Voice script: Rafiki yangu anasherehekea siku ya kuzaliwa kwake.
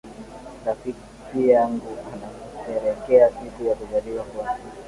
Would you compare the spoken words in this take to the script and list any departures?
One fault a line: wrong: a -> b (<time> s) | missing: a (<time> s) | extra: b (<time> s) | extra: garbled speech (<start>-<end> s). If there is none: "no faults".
no faults